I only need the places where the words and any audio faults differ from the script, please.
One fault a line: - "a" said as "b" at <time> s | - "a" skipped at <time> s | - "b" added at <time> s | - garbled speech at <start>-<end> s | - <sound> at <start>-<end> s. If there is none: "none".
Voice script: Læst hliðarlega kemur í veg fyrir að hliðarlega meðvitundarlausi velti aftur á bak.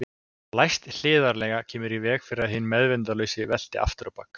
- "hliðarlega" said as "hinn" at 2.6 s